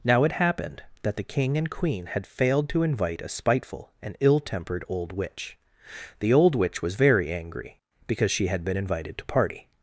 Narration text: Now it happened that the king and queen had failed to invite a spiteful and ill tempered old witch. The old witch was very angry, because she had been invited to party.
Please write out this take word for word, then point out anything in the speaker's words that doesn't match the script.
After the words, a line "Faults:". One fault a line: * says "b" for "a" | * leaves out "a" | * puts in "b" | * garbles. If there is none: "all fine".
Now it happened that the king and queen had failed to invite a spiteful and ill tempered old witch. The old witch was very angry, because she had been invited to party.
Faults:
all fine